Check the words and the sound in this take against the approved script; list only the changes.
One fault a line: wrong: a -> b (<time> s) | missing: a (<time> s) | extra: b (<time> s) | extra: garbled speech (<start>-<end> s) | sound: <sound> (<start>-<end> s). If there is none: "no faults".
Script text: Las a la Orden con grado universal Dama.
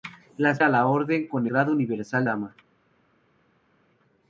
no faults